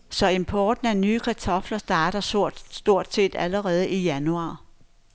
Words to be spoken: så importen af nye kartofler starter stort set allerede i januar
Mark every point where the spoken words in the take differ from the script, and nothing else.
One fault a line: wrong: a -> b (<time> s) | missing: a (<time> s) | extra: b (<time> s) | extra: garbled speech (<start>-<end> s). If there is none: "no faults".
no faults